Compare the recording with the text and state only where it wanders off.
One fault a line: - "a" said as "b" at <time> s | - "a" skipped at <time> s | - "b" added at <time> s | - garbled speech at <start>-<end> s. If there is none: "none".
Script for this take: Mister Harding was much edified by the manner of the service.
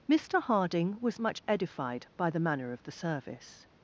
none